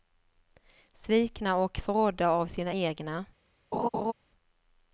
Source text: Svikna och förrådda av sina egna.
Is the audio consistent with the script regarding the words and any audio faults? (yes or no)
no